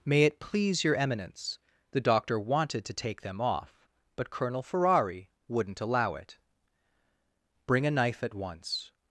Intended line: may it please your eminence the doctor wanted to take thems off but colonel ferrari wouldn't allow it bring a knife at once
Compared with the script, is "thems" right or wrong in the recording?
wrong